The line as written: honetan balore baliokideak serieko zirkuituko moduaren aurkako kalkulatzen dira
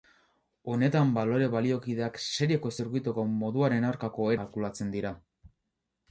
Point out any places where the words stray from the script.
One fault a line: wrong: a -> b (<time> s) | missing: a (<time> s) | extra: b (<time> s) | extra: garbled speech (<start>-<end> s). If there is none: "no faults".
no faults